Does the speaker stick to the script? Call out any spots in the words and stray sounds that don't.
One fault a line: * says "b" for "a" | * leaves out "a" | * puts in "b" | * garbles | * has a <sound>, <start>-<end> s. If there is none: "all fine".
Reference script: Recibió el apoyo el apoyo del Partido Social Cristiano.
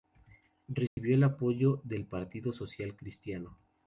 * has a dropout, 0.9-1.0 s
* leaves out "el apoyo"